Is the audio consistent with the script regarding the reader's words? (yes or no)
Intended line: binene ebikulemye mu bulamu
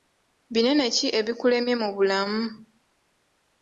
no